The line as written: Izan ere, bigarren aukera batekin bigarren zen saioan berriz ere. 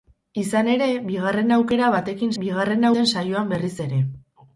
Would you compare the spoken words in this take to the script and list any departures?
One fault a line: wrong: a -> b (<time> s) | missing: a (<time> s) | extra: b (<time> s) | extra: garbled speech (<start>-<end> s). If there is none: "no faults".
no faults